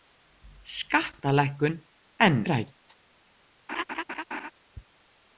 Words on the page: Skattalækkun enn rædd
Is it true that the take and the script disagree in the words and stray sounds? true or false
true